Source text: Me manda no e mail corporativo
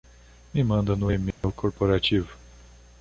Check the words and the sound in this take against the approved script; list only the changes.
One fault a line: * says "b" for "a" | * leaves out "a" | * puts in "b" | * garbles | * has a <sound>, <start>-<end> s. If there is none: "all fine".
* has a dropout, 1.3-1.4 s